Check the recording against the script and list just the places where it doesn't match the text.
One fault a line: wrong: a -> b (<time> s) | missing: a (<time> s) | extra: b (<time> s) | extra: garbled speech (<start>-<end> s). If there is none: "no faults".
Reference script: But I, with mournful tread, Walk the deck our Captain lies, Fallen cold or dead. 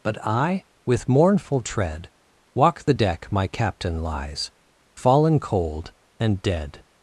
wrong: our -> my (3.3 s)
wrong: or -> and (6.2 s)